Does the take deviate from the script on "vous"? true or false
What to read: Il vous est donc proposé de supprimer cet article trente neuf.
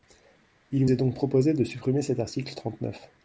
true